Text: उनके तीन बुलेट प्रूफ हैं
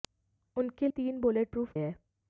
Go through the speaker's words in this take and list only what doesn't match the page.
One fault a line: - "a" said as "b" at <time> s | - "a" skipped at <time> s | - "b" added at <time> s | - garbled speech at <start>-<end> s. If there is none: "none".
none